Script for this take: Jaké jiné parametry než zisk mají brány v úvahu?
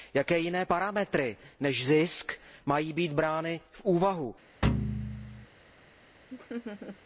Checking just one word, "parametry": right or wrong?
right